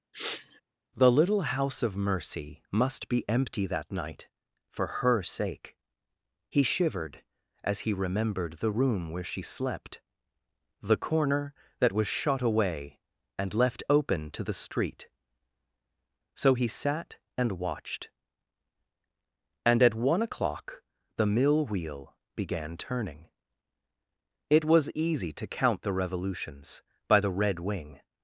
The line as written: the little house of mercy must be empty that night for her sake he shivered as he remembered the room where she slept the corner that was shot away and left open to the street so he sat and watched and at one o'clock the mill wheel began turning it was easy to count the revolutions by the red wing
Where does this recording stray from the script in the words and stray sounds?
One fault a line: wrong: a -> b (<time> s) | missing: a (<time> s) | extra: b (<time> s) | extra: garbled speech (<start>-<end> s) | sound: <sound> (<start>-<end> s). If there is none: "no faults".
sound: sniff (0.1-0.6 s)